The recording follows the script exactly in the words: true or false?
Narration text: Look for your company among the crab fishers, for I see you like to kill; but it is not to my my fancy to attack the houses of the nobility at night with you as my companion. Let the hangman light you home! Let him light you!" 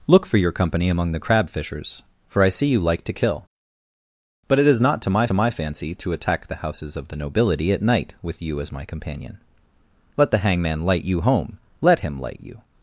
true